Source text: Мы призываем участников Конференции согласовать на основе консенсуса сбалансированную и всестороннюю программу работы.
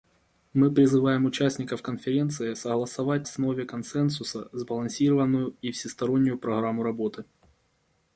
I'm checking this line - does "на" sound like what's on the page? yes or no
no